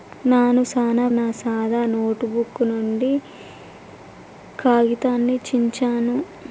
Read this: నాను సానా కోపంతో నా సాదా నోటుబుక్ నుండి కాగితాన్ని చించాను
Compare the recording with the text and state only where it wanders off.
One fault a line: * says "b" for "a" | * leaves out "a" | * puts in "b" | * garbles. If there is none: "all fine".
* leaves out "కోపంతో"